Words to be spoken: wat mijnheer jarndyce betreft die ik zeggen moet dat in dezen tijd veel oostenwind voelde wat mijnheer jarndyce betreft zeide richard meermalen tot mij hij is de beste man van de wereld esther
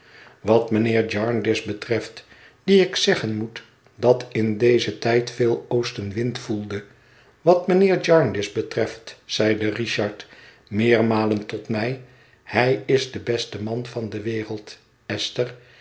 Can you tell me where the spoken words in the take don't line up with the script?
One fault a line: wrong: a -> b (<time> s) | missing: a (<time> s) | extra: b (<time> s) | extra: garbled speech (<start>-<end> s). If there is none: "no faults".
no faults